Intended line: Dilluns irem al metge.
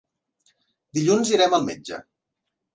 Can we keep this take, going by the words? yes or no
yes